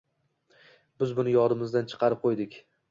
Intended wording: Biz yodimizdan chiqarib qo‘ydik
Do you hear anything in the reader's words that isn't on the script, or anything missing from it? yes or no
yes